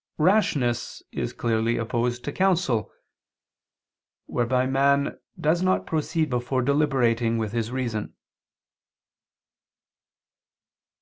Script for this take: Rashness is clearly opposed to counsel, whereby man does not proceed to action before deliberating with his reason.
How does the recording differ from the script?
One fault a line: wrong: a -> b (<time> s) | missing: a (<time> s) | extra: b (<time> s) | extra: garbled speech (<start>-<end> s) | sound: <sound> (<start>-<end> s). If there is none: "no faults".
missing: to action (6.3 s)